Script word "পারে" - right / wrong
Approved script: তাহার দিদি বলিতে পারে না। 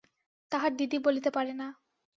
right